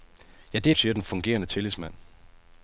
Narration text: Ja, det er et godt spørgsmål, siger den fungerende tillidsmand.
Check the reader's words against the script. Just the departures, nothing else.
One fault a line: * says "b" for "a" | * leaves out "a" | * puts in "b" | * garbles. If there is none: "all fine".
* leaves out "et godt spørgsmål"